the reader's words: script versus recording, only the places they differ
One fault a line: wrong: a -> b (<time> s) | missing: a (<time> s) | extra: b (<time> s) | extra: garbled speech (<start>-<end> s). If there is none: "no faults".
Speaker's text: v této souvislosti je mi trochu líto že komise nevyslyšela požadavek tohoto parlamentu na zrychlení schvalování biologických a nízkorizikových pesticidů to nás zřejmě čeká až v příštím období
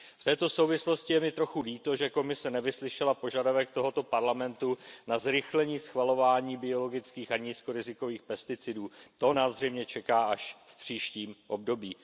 no faults